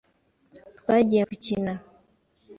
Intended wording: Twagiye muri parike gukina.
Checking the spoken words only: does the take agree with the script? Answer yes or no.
no